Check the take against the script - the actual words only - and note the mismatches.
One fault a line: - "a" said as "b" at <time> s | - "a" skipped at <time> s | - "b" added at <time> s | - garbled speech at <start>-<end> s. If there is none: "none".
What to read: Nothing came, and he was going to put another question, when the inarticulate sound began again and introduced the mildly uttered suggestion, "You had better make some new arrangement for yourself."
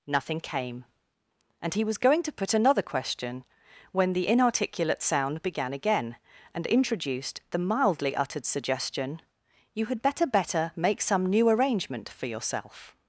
- "better" added at 10.3 s